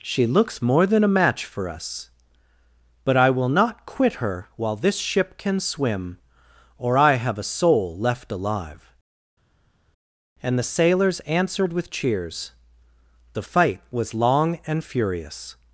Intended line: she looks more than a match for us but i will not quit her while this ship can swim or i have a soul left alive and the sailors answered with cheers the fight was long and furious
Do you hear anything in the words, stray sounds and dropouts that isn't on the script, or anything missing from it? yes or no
no